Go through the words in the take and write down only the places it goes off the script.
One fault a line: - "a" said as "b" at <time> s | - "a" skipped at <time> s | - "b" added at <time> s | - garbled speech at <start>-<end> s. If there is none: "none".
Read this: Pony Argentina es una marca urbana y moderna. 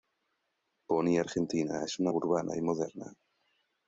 - "marca" skipped at 2.1 s